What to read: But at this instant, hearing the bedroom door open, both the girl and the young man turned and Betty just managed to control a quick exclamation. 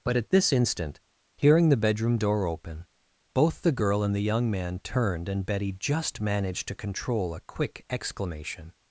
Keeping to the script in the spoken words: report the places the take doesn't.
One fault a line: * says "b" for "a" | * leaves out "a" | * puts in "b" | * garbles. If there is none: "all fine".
all fine